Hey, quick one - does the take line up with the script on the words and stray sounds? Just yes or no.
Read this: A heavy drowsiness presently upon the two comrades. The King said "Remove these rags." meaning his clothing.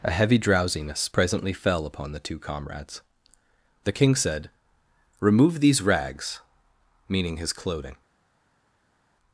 no